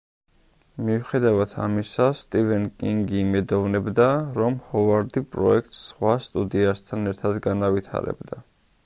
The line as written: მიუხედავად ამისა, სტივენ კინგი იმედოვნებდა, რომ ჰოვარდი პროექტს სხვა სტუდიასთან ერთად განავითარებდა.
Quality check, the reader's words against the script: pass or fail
pass